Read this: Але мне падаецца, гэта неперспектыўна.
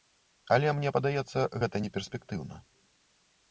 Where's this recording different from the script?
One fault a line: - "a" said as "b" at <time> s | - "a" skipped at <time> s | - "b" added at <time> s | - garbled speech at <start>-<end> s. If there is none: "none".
none